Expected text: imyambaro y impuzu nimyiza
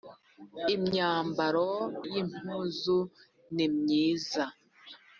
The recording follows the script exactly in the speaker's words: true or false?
true